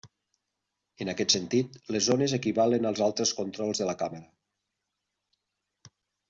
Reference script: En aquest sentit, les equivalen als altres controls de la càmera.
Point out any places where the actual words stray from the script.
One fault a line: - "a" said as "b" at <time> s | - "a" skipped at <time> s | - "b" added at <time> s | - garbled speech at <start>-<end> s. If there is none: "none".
- "zones" added at 2.1 s